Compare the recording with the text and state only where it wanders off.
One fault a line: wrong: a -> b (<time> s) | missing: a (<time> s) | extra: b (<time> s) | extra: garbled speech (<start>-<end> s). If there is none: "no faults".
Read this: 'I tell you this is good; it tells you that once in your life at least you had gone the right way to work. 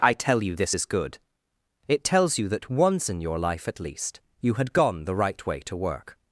no faults